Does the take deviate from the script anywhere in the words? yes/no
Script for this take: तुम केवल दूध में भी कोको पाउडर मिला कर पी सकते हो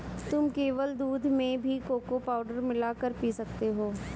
no